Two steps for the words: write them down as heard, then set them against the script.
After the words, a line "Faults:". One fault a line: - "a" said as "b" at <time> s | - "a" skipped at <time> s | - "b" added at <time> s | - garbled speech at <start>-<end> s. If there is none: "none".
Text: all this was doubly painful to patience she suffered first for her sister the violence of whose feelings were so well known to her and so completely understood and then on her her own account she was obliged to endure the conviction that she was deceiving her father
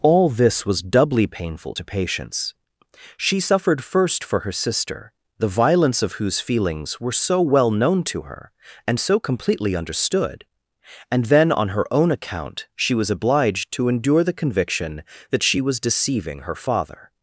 all this was doubly painful to patience she suffered first for her sister the violence of whose feelings were so well known to her and so completely understood and then on her own account she was obliged to endure the conviction that she was deceiving her father
Faults:
- "her" skipped at 11.8 s